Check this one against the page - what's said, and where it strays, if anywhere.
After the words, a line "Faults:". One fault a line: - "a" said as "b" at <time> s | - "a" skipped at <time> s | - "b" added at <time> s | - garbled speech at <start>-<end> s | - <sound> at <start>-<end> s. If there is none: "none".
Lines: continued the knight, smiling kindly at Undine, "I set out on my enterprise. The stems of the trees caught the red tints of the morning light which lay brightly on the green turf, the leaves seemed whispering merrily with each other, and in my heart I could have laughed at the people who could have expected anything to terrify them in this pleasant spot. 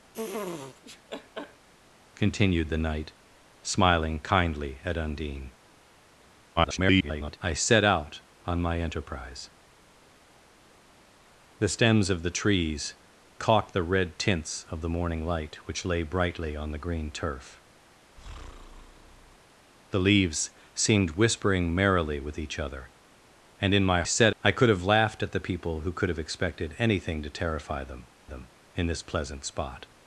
continued the knight, smiling kindly at Undine, [garbled] "I set out on my enterprise. The stems of the trees caught the red tints of the morning light which lay brightly on the green turf, the leaves seemed whispering merrily with each other, and in my set I could have laughed at the people who could have expected anything to terrify them them in this pleasant spot.
Faults:
- laugh at 0.1-1.7 s
- garbled speech at 6.6-7.4 s
- breath at 18.2-19.4 s
- "heart" said as "set" at 24.0 s
- "them" added at 28.2 s